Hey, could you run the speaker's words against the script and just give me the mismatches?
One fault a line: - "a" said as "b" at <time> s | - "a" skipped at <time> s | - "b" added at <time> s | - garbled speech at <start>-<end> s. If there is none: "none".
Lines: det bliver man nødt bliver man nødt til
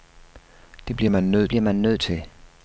none